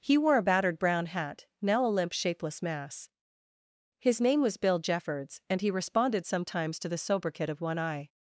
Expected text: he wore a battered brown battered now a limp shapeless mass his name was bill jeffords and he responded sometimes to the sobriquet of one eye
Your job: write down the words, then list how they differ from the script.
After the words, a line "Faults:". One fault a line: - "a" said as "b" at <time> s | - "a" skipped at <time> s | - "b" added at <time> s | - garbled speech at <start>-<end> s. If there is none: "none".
he wore a battered brown hat now a limp shapeless mass his name was bill jeffords and he responded sometimes to the sobriquet of one eye
Faults:
- "battered" said as "hat" at 1.1 s